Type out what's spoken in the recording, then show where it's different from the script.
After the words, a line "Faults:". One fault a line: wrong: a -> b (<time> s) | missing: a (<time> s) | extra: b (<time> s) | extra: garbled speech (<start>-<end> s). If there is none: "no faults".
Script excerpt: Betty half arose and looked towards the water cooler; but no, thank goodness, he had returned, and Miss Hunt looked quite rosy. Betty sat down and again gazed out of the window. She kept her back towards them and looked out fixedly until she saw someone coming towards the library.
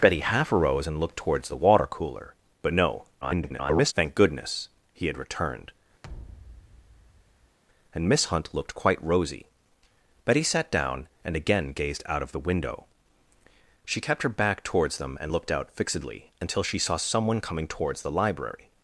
Betty half arose and looked towards the water cooler; but no, [garbled] thank goodness, he had returned, and Miss Hunt looked quite rosy. Betty sat down and again gazed out of the window. She kept her back towards them and looked out fixedly until she saw someone coming towards the library.
Faults:
extra: garbled speech (3.2-3.9 s)